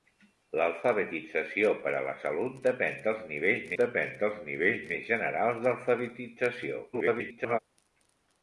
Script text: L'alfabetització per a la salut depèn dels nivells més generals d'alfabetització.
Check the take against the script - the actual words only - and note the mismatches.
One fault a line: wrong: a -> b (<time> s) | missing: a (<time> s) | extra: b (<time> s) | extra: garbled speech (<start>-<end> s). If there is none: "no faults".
extra: depèn dels nivells (3.8 s)
extra: garbled speech (6.9-7.6 s)